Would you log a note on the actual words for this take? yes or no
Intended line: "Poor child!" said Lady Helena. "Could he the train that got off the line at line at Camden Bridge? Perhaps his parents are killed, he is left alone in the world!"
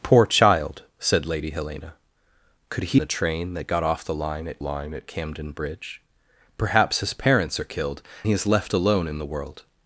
no